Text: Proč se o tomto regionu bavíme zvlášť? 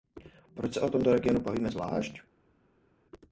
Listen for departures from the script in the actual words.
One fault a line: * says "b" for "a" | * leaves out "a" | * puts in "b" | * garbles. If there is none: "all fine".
all fine